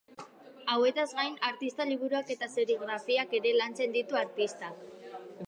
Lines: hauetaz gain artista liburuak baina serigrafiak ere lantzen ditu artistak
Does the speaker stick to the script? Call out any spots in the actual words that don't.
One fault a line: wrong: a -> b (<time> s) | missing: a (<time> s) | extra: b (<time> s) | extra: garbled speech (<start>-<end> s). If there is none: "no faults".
wrong: baina -> eta (2.4 s)